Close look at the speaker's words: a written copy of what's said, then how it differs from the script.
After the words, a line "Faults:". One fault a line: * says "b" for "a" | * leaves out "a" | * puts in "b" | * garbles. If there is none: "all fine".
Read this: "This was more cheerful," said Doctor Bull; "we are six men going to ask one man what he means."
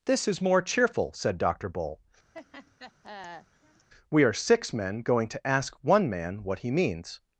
"This is more cheerful," said Doctor Bull; "we are six men going to ask one man what he means."
Faults:
* says "is" for "was"